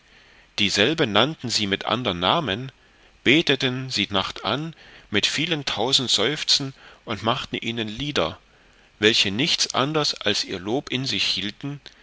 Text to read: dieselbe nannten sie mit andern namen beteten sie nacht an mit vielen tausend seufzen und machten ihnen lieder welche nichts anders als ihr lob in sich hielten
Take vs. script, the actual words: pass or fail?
pass